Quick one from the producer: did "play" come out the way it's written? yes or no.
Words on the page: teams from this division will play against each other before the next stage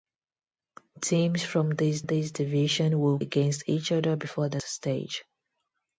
no